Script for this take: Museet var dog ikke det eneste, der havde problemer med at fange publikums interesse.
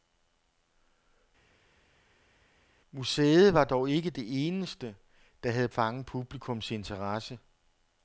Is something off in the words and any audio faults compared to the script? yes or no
yes